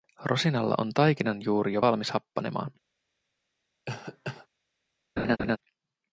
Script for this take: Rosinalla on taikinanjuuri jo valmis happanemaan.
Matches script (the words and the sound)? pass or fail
fail